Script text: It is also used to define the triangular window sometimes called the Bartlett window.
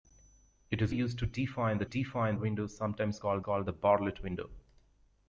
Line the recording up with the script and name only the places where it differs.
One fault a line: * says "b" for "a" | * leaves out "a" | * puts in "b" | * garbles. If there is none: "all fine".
* leaves out "also"
* says "define" for "triangular"
* puts in "called"